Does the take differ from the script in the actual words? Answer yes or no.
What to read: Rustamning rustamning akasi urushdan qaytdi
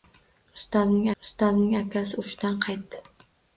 no